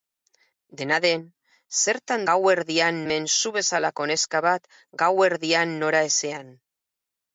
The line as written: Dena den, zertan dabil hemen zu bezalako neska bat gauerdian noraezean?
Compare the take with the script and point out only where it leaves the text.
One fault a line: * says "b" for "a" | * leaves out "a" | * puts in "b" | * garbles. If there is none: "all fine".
* says "gauerdian" for "dabil"